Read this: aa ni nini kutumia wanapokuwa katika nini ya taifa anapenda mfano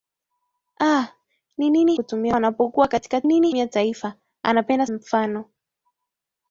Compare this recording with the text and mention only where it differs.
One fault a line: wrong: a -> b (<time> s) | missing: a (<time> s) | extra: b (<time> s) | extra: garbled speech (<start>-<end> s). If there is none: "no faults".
no faults